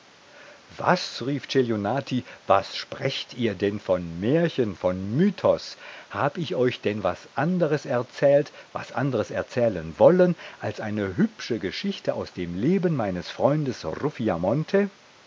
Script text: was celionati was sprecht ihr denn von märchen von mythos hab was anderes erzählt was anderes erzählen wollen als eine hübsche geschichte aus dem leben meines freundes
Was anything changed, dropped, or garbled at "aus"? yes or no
no